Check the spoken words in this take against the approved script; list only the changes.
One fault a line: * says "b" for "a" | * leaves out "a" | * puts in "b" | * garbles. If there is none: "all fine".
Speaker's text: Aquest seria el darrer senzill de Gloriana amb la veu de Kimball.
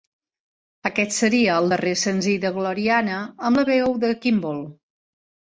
all fine